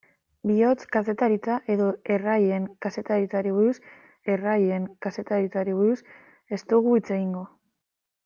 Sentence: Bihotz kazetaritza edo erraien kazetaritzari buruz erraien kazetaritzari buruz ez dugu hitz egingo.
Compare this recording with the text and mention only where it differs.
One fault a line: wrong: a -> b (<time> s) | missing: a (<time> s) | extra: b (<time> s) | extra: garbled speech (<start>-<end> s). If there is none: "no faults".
no faults